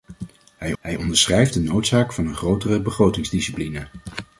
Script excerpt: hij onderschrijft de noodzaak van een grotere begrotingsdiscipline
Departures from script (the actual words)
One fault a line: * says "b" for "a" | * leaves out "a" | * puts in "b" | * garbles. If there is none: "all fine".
* puts in "hij"